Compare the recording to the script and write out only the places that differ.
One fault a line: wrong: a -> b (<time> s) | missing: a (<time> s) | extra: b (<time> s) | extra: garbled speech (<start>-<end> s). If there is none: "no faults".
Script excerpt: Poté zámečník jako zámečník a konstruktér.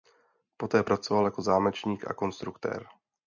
wrong: zámečník -> pracoval (0.8 s)